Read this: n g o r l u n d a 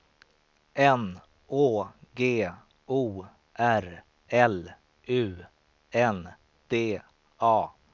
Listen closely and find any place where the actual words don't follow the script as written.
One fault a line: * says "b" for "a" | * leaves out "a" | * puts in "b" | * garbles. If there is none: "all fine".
* puts in "å"